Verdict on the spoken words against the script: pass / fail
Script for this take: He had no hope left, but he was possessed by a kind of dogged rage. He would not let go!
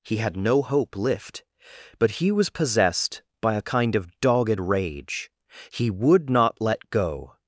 fail